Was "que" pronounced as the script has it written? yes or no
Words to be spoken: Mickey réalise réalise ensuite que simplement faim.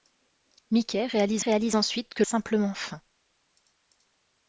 yes